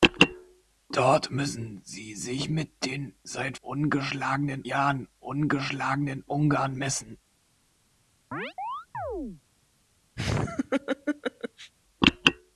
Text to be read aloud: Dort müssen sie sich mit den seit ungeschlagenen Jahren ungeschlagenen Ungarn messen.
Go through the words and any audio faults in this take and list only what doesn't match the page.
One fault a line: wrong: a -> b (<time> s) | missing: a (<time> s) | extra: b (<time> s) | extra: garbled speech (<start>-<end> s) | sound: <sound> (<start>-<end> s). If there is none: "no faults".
sound: chirp (8.3-9.4 s)
sound: laugh (10.2-11.7 s)